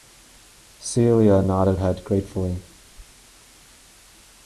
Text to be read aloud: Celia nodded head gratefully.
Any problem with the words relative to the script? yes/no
no